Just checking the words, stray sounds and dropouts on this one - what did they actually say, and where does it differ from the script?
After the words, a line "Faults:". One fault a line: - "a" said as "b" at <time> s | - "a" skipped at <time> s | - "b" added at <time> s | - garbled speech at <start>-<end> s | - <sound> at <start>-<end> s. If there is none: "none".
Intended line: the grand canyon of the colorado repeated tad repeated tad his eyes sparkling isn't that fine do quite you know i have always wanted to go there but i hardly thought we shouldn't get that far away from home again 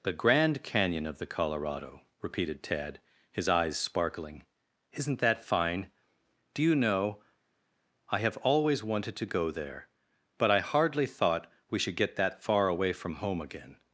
the grand canyon of the colorado repeated tad his eyes sparkling isn't that fine do you know i have always wanted to go there but i hardly thought we should get that far away from home again
Faults:
- "repeated tad" skipped at 3.0 s
- "quite" skipped at 6.6 s
- "shouldn't" said as "should" at 11.8 s